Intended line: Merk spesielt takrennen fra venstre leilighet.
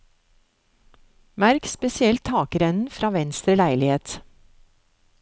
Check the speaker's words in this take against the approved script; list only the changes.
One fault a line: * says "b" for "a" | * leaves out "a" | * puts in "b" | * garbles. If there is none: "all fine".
all fine